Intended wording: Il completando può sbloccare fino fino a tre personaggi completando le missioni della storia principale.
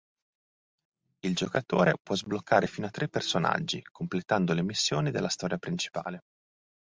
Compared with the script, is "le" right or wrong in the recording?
right